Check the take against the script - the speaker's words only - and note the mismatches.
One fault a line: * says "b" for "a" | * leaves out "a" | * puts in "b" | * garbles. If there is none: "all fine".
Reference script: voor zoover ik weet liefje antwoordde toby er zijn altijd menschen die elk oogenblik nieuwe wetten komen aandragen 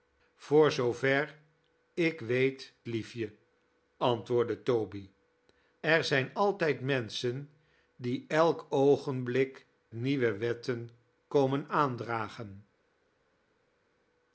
all fine